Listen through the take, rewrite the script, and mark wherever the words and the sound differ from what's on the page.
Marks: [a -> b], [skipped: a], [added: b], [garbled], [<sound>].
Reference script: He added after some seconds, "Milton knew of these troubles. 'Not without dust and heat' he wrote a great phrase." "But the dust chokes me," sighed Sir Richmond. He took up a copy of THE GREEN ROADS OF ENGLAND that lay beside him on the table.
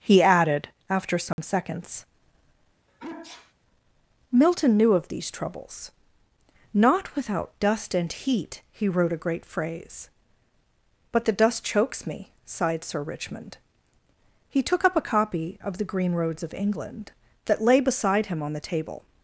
He added after some [dropout] seconds, [sneeze] "Milton knew of these troubles. 'Not without dust and heat' he wrote a great phrase." "But the dust chokes me," sighed Sir Richmond. He took up a copy of THE GREEN ROADS OF ENGLAND that lay beside him on the table.